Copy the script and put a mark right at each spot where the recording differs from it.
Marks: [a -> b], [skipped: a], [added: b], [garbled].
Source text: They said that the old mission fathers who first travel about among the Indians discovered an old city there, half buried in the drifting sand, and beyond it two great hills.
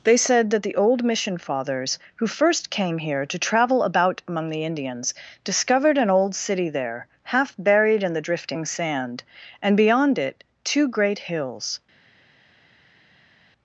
They said that the old mission fathers who first [added: came here to] travel about among the Indians discovered an old city there, half buried in the drifting sand, and beyond it two great hills.